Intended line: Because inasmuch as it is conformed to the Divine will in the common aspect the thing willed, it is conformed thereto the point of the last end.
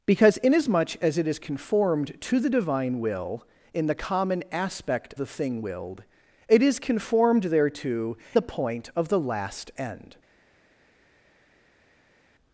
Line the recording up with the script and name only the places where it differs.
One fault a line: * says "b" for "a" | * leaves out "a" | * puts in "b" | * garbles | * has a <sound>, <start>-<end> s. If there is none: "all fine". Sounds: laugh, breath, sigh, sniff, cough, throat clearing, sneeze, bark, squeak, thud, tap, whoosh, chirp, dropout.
all fine